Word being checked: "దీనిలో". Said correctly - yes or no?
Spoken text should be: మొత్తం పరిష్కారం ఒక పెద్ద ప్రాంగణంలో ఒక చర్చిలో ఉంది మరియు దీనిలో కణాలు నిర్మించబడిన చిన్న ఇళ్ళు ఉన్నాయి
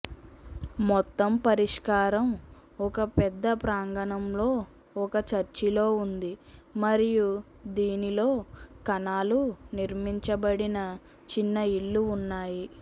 yes